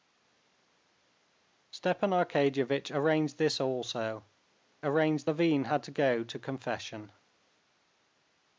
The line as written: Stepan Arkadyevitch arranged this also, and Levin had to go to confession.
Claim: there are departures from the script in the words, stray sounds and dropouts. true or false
true